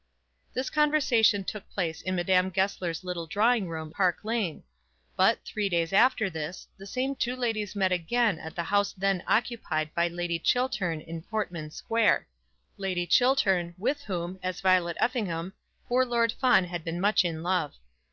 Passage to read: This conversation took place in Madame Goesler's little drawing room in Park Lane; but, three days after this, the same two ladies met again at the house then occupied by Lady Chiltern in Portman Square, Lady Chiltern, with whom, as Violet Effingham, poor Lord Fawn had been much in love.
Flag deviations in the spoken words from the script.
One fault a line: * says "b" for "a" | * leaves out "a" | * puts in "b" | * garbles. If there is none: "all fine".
* leaves out "in"